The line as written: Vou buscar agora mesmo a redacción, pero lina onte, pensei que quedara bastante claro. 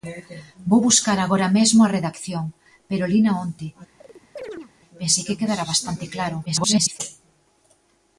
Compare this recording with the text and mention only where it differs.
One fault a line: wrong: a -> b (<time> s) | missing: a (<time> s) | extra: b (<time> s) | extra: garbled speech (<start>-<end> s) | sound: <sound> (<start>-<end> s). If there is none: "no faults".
sound: chirp (4.0-4.7 s)
extra: garbled speech (6.5-7.0 s)